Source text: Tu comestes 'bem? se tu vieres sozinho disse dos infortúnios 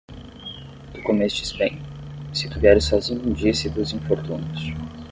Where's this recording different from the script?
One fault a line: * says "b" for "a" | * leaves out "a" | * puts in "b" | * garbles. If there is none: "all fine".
all fine